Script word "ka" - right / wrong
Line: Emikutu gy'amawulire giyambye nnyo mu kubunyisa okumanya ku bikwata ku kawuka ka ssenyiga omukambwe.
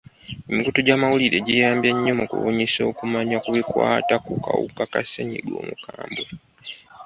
right